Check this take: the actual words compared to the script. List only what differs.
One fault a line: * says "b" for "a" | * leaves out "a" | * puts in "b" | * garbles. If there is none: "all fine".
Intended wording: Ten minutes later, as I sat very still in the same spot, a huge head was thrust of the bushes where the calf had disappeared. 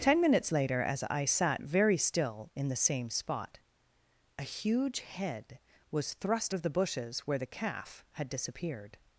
all fine